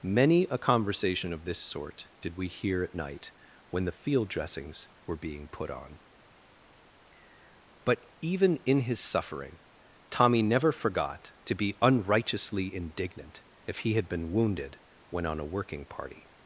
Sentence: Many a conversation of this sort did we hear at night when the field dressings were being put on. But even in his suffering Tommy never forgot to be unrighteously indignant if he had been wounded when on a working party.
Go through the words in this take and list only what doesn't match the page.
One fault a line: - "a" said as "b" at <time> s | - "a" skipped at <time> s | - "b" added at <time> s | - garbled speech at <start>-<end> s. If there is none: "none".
none